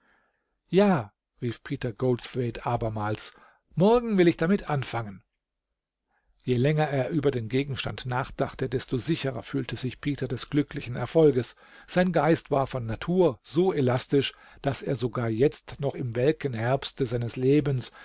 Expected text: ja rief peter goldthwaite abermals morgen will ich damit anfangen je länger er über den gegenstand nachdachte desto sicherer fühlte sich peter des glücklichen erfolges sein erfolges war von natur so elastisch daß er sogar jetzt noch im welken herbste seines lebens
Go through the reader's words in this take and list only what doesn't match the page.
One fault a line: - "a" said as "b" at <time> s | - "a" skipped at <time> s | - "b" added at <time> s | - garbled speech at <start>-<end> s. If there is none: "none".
- "erfolges" said as "geist" at 12.1 s